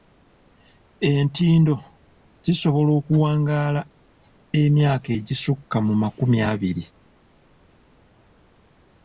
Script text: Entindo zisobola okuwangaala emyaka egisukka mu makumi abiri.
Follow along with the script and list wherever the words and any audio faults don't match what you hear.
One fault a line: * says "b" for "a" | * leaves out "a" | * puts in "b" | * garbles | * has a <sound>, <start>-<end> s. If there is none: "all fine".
all fine